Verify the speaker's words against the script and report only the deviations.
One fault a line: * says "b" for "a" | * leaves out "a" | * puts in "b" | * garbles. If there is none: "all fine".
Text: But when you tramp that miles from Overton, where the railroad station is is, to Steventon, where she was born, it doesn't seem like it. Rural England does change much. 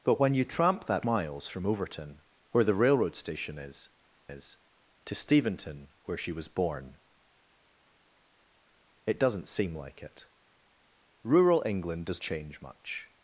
all fine